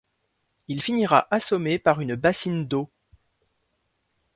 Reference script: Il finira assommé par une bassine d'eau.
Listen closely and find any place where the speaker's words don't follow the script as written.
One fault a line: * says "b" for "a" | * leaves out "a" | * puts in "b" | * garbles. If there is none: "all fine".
all fine